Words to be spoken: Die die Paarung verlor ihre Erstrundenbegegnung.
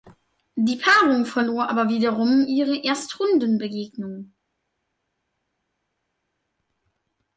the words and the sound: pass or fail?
fail